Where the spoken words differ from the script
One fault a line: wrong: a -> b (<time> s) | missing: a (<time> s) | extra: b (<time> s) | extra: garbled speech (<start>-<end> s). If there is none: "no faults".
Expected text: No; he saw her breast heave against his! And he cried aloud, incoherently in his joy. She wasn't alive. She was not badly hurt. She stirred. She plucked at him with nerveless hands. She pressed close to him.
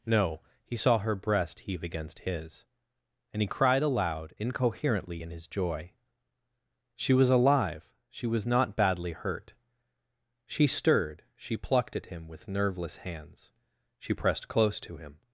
wrong: wasn't -> was (7.1 s)